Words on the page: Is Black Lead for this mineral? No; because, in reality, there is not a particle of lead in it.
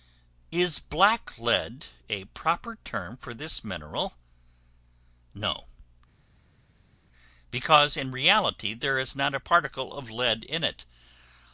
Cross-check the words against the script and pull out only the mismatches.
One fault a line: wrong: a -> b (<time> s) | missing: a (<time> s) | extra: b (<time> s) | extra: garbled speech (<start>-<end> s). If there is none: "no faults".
extra: a proper term (2.1 s)